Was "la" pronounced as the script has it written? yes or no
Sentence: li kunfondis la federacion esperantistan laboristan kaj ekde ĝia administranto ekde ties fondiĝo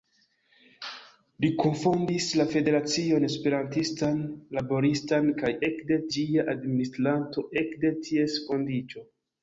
yes